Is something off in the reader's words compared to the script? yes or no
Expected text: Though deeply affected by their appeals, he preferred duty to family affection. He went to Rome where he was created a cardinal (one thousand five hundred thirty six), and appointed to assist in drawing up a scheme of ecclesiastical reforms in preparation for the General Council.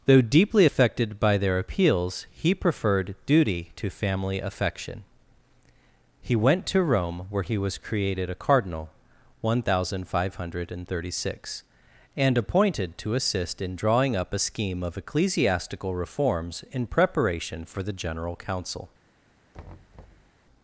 no